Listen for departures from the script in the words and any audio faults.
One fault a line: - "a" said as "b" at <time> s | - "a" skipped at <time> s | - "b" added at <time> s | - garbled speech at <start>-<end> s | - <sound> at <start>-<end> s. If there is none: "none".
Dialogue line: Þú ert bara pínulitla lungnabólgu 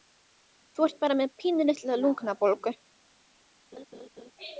- "með" added at 1.2 s
- laugh at 3.7-4.3 s